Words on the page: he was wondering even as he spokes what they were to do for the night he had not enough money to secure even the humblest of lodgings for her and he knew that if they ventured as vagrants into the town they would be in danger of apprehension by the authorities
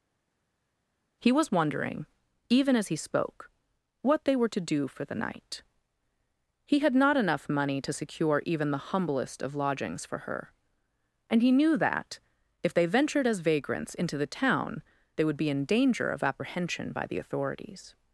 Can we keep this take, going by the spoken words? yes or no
no